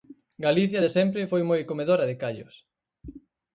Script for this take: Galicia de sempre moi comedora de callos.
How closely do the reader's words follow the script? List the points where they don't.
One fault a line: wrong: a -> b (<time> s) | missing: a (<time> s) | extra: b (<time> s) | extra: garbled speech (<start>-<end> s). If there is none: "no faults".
extra: foi (1.3 s)